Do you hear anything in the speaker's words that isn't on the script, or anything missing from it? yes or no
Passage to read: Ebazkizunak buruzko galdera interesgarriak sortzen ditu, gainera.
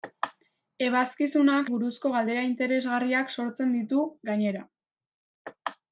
no